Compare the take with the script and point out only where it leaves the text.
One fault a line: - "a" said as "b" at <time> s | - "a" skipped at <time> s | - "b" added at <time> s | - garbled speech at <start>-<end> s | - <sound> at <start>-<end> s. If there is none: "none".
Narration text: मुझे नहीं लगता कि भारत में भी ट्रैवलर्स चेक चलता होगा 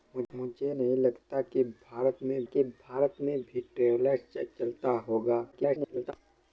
- "कि भारत में" added at 2.4 s
- garbled speech at 5.5-6.1 s